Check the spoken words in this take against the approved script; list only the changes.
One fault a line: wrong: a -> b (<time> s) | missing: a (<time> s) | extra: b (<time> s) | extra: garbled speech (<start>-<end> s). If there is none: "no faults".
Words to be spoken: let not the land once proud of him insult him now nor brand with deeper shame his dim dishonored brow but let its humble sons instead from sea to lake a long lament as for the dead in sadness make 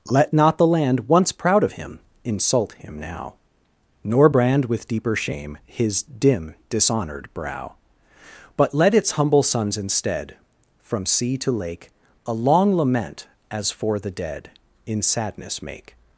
no faults